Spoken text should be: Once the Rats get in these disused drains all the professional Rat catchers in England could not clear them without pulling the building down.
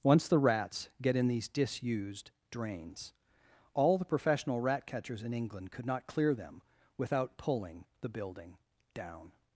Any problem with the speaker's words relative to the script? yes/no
no